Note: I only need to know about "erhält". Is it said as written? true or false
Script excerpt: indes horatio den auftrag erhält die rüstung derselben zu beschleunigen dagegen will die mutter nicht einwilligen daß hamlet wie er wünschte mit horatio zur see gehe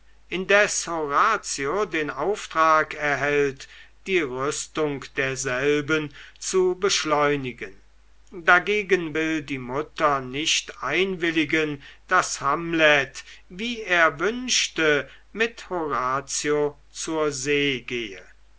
true